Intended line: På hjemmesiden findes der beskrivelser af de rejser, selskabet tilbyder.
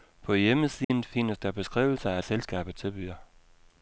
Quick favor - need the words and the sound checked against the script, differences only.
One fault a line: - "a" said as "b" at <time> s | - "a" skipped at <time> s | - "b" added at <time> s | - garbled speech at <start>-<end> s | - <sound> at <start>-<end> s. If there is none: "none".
- dropout at 0.8-0.9 s
- "de rejser" skipped at 2.2 s